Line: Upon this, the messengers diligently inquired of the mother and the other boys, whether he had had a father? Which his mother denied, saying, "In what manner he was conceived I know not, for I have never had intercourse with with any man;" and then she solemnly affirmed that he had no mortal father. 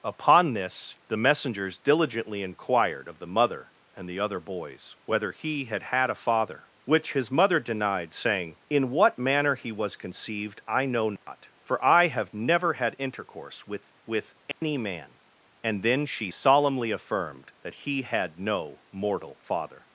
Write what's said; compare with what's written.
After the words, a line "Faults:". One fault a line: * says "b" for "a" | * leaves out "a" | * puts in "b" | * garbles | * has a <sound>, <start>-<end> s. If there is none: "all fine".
Upon this, the messengers diligently inquired of the mother and the other boys, whether he had had a father? Which his mother denied, saying, "In what manner he was conceived I know not, for I have never had intercourse with with any man;" and then she solemnly affirmed that he had no mortal father.
Faults:
* has a dropout, 11.2-11.3 s
* has a dropout, 14.5-14.6 s